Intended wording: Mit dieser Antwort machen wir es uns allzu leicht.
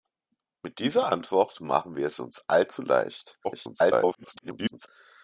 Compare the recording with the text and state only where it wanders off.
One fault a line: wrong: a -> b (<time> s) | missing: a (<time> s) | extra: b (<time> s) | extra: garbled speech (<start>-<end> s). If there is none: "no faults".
extra: garbled speech (3.4-4.9 s)